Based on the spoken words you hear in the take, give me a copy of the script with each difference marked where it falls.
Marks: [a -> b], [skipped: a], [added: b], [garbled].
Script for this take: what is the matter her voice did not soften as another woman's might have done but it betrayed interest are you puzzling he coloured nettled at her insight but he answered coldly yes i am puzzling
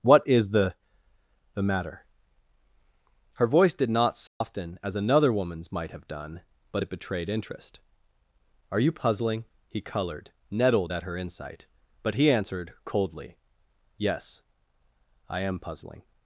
what is the [added: the] matter her voice did not soften as another woman's might have done but it betrayed interest are you puzzling he coloured nettled at her insight but he answered coldly yes i am puzzling